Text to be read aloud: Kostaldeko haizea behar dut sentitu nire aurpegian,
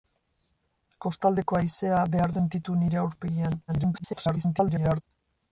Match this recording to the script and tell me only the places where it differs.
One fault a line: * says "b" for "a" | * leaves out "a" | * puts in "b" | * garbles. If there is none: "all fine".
* leaves out "dut"
* garbles